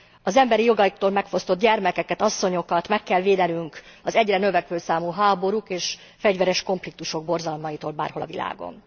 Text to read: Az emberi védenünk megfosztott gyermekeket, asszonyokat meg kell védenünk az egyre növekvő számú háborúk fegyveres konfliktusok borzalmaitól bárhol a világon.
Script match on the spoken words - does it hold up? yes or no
no